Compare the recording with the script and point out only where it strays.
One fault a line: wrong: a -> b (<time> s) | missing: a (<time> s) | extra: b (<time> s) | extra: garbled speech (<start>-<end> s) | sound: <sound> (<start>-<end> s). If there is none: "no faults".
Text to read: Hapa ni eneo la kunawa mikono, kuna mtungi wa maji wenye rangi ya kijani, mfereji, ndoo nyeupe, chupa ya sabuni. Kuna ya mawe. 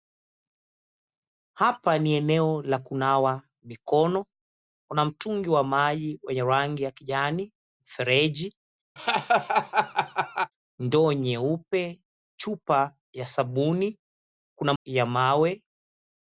sound: laugh (9.0-10.5 s)